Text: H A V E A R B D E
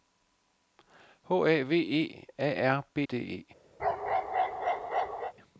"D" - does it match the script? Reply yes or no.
yes